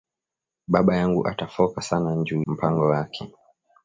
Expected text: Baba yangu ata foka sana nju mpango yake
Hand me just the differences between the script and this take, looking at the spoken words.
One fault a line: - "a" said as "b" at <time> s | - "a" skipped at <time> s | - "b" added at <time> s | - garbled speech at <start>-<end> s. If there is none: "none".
none